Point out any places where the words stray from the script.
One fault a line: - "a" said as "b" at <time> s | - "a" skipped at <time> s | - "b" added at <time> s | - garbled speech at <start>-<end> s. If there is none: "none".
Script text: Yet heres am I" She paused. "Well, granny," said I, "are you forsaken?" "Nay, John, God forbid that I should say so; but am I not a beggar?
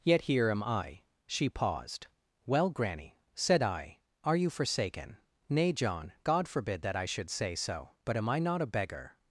- "heres" said as "here" at 0.2 s